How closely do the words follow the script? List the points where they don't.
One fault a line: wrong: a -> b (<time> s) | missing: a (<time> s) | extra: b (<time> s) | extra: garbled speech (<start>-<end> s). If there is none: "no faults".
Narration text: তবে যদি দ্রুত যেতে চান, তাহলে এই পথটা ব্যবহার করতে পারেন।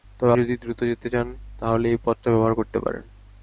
no faults